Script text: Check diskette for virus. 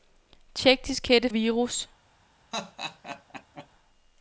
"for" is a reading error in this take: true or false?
true